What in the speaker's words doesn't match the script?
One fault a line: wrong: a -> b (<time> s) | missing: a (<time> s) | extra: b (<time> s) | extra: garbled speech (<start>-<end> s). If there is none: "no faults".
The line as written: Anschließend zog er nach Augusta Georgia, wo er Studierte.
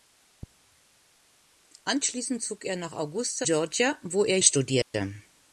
no faults